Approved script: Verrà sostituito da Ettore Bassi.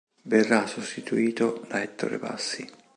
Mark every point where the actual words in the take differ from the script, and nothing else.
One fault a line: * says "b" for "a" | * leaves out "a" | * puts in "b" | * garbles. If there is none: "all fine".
all fine